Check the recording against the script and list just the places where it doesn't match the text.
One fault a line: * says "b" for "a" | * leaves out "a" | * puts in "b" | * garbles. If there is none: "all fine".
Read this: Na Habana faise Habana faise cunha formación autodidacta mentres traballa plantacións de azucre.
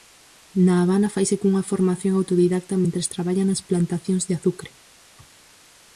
* leaves out "Habana faise"
* puts in "nas"